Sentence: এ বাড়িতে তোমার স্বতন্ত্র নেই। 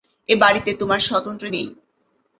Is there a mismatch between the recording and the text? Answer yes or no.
no